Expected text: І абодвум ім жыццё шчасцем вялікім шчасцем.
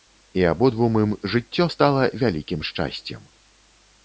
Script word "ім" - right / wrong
right